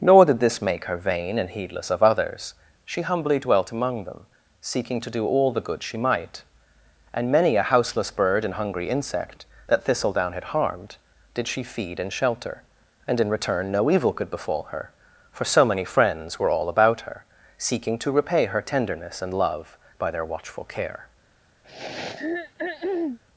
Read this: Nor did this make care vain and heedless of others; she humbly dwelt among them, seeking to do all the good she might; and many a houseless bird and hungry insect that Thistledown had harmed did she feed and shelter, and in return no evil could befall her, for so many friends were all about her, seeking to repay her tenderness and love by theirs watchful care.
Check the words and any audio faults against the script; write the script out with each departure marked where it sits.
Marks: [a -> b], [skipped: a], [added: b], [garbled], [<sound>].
Nor did this make [care -> her] vain and heedless of others; she humbly dwelt among them, seeking to do all the good she might; and many a houseless bird and hungry insect that Thistledown had harmed did she feed and shelter, and in return no evil could befall her, for so many friends were all about her, seeking to repay her tenderness and love by [theirs -> their] watchful care. [throat clearing]